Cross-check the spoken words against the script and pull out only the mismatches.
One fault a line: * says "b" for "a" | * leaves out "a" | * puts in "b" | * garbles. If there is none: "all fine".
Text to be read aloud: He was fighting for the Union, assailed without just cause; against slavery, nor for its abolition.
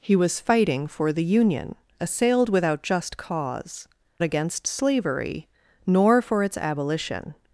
all fine